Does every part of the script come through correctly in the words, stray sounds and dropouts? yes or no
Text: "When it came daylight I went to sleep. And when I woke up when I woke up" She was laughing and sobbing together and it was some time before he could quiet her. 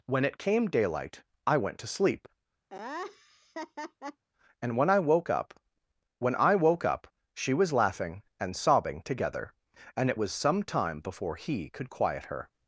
no